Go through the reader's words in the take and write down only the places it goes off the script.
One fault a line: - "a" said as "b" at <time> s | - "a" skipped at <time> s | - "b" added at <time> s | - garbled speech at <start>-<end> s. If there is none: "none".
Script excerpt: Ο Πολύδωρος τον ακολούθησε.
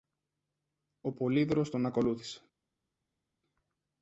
none